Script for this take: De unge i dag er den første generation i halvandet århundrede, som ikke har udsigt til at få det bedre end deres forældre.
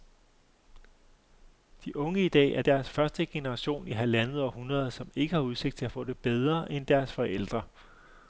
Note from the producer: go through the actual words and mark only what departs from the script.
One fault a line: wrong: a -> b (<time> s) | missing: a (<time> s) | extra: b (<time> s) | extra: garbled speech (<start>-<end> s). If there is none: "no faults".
wrong: den -> deres (2.6 s)